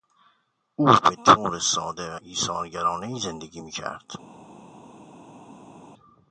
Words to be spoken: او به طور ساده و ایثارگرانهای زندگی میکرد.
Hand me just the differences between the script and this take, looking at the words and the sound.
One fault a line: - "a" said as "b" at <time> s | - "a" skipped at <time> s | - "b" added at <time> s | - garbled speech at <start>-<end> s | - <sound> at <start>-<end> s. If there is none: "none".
none